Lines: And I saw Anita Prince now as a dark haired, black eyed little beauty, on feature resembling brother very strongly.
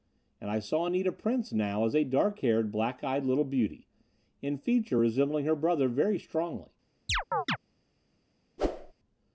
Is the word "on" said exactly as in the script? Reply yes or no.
no